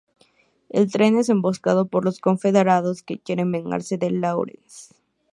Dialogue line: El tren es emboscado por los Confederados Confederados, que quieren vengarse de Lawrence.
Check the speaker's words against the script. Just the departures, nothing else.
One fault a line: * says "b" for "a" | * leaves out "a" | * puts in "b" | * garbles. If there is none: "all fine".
* leaves out "Confederados"